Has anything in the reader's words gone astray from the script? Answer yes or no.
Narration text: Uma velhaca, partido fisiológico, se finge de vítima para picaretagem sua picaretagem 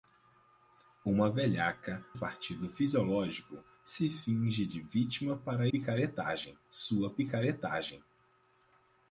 no